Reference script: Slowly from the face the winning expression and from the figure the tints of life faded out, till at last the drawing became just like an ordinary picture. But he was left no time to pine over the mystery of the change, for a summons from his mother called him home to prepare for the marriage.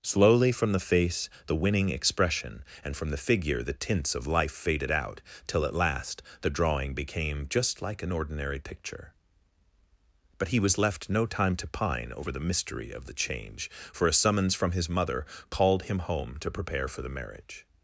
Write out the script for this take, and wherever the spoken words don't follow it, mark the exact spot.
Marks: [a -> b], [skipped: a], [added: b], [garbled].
Slowly from the face the winning expression and from the figure the tints of life faded out, till at last the drawing became just like an ordinary picture. But he was left no time to pine over the mystery of the change, for a summons from his mother called him home to prepare for the marriage.